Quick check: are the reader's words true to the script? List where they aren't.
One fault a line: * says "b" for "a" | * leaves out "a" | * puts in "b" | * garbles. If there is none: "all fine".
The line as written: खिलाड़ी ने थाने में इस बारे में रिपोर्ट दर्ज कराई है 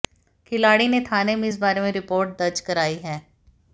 all fine